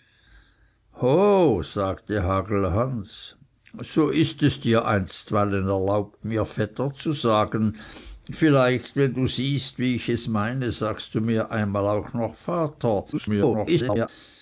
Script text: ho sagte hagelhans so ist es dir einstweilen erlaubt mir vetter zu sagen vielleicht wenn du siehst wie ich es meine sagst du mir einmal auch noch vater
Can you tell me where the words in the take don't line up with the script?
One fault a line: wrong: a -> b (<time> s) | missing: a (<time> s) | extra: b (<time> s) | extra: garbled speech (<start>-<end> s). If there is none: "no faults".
extra: garbled speech (13.1-14.1 s)